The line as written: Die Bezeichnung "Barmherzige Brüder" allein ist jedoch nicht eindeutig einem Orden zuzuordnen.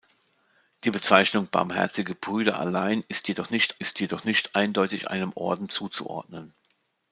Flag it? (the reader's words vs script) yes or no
yes